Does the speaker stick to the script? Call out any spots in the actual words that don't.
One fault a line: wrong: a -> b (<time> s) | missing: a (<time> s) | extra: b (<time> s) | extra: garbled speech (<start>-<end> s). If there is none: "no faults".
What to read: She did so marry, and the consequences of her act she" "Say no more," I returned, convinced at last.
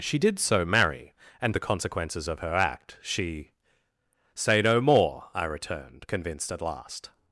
no faults